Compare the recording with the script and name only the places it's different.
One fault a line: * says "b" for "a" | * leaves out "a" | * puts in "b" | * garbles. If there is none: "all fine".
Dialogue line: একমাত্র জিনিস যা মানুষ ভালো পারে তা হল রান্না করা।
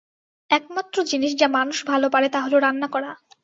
all fine